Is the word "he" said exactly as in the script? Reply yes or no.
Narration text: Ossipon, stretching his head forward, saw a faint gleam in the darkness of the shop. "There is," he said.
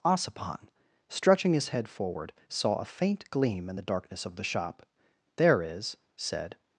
no